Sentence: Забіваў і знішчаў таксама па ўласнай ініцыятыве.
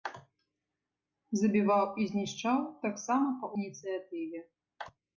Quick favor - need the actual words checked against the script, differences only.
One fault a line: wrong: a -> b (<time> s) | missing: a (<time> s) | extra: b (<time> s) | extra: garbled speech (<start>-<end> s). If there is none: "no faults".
missing: ўласнай (3.5 s)